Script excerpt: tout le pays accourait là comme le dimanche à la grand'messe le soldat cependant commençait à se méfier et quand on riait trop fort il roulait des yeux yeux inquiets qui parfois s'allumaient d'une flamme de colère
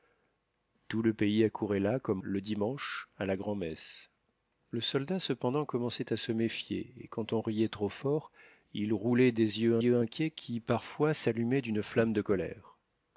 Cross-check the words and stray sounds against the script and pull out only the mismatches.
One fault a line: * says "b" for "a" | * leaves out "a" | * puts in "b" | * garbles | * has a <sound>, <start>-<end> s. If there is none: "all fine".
all fine